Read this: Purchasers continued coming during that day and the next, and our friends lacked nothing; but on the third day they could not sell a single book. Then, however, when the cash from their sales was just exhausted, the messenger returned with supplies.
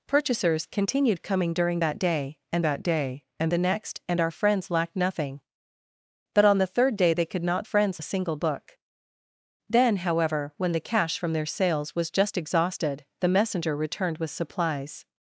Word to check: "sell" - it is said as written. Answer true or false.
false